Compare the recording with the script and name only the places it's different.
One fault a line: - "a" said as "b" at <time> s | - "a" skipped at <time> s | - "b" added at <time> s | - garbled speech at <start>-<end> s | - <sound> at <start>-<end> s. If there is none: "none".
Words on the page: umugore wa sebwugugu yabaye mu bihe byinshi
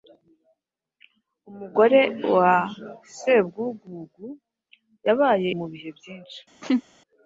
- laugh at 6.6-6.8 s